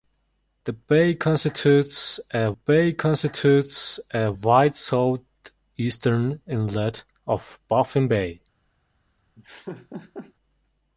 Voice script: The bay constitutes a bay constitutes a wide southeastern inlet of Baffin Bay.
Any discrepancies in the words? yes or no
no